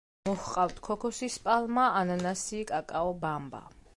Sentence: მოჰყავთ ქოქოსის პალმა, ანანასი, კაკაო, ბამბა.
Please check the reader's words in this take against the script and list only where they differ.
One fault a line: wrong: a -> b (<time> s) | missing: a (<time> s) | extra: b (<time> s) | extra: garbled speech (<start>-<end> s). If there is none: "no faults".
no faults